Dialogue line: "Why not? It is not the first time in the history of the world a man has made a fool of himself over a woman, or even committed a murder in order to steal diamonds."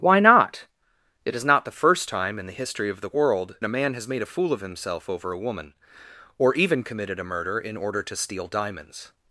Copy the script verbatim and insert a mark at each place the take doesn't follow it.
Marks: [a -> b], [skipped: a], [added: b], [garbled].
"Why not? It is not the first time in the history of the world a man has made a fool of himself over a woman, or even committed a murder in order to steal diamonds."